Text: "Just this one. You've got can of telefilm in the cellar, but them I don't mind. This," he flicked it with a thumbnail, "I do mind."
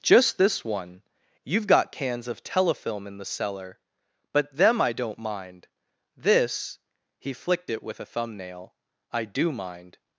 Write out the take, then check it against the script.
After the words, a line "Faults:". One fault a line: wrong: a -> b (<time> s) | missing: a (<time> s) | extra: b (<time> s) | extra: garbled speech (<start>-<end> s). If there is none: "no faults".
"Just this one. You've got cans of telefilm in the cellar, but them I don't mind. This," he flicked it with a thumbnail, "I do mind."
Faults:
wrong: can -> cans (1.9 s)